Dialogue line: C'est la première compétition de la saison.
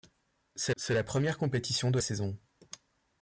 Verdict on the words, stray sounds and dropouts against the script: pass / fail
fail